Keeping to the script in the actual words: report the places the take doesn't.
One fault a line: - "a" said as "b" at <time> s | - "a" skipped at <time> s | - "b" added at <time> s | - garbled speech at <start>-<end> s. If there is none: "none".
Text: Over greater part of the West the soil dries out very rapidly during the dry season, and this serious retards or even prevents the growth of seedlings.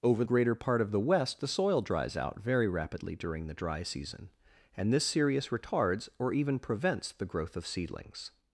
none